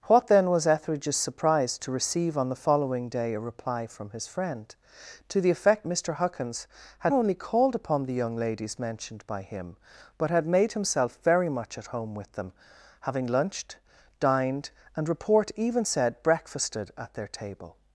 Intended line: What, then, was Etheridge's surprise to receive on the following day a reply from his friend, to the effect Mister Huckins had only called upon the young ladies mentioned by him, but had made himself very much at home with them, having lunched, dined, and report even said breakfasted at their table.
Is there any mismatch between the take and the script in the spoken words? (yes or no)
no